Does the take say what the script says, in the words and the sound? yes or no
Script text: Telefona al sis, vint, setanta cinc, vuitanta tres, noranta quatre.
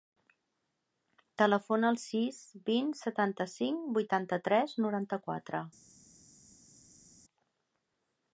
yes